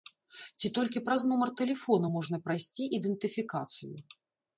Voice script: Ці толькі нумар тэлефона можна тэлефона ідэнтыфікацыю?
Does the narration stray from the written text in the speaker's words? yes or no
yes